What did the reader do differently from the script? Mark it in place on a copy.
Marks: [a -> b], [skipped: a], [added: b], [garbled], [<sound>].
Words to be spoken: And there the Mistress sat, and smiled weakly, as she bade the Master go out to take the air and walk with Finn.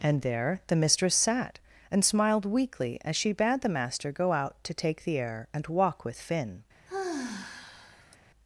And there the Mistress sat, and smiled weakly, as she bade the Master go out to take the air and walk with Finn. [sigh]